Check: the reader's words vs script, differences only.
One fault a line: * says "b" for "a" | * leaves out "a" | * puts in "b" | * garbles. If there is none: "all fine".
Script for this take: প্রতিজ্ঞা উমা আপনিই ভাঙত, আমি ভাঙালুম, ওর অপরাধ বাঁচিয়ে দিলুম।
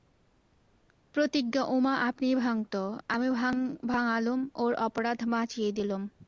all fine